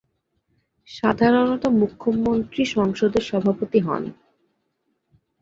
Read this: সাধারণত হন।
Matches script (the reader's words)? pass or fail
fail